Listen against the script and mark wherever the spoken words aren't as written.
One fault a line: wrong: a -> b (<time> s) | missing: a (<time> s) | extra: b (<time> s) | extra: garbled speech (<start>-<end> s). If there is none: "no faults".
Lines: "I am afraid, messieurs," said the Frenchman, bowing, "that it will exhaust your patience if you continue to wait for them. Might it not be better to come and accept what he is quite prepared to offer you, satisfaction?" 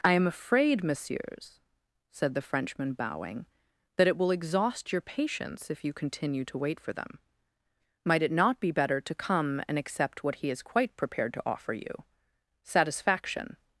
no faults